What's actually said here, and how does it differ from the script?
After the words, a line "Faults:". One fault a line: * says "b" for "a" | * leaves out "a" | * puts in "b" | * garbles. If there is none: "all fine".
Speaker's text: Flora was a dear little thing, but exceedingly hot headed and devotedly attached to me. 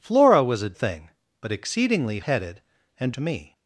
Flora was a thing, but exceedingly headed and to me.
Faults:
* leaves out "dear little"
* leaves out "hot"
* leaves out "devotedly attached"